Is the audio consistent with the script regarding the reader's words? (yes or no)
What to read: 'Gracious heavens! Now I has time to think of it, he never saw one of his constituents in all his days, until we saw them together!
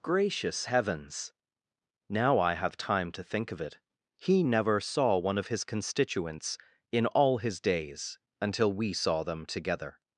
no